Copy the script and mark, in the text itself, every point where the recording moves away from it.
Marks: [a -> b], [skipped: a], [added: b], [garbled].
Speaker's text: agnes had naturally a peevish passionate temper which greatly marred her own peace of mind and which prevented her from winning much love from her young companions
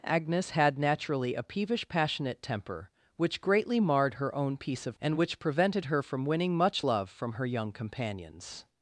agnes had naturally a peevish passionate temper which greatly marred her own peace of [skipped: mind] and which prevented her from winning much love from her young companions